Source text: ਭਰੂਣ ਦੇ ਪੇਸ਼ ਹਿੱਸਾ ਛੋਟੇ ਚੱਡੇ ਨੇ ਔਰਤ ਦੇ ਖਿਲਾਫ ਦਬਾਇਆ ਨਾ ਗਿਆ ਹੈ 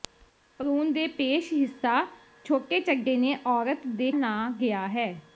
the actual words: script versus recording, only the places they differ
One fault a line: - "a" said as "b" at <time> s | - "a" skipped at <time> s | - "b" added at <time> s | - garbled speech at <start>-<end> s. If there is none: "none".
- "ਖਿਲਾਫ ਦਬਾਇਆ" skipped at 4.1 s